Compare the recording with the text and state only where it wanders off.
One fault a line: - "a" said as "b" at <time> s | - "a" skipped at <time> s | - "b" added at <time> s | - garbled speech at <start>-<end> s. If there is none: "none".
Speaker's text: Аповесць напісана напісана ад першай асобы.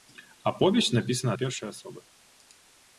- "напісана" skipped at 1.3 s